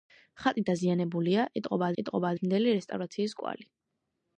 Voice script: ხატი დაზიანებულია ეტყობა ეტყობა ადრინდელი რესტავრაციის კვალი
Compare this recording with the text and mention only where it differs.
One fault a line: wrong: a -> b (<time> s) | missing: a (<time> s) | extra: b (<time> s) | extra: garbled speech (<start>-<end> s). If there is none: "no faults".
no faults